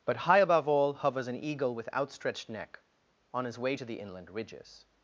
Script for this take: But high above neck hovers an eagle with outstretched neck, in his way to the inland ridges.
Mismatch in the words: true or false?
true